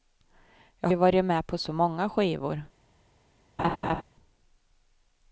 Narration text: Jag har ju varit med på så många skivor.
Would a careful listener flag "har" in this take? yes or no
yes